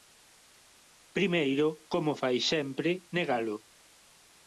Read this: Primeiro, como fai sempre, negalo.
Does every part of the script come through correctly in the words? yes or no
yes